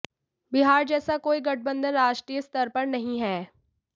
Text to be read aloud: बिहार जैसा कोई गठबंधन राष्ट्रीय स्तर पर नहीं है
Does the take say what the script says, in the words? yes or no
yes